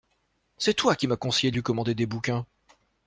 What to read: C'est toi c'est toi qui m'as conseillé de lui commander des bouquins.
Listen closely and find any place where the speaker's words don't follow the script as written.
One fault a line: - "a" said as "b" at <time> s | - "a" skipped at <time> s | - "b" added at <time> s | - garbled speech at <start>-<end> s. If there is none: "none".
- "c'est toi" skipped at 0.9 s